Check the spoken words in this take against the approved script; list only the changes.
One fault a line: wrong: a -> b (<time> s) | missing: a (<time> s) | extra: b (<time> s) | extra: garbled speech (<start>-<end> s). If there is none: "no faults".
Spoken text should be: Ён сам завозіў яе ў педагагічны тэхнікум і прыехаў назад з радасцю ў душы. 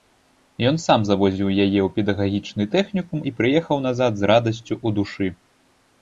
no faults